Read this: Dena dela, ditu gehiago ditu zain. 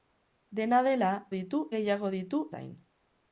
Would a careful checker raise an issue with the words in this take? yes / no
no